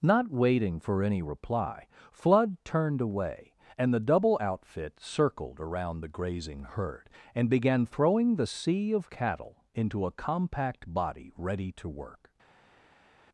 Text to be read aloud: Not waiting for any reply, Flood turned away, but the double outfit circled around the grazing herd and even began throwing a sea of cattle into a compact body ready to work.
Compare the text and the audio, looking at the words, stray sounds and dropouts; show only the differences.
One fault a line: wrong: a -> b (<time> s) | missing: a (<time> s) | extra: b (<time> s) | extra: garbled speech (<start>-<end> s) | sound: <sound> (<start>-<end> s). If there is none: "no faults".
wrong: but -> and (3.8 s)
missing: even (7.5 s)
wrong: a -> the (8.3 s)